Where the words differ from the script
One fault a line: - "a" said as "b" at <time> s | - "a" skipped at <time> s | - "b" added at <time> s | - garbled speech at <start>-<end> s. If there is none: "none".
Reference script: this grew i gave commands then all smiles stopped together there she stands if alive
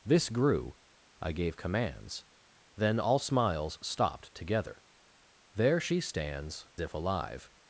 none